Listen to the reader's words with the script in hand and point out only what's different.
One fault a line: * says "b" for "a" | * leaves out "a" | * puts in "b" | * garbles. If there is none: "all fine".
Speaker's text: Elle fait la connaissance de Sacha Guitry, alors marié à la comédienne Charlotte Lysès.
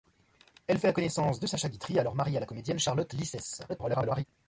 * garbles